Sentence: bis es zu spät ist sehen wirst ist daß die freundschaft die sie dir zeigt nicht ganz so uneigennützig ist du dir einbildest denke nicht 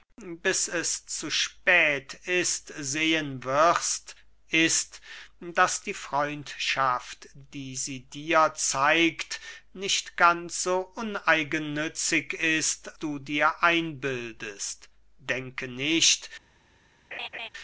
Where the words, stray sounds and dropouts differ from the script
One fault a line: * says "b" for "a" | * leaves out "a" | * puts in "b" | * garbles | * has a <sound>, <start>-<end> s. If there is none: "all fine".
* has a laugh, 17.1-17.5 s